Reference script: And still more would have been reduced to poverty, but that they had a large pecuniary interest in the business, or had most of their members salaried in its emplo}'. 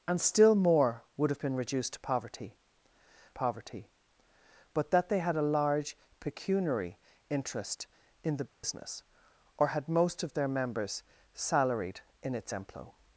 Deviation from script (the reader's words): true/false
true